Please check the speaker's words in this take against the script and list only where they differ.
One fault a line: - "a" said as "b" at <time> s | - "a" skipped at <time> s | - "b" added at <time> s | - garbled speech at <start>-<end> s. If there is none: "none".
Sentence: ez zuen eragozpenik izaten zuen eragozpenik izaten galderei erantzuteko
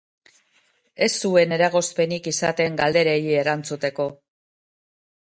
- "zuen eragozpenik izaten" skipped at 2.8 s